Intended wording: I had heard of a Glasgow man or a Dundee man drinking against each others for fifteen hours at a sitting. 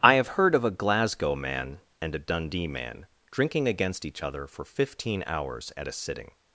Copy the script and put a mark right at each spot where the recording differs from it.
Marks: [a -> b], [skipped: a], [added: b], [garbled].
I [had -> have] heard of a Glasgow man [or -> and] a Dundee man drinking against each [others -> other] for fifteen hours at a sitting.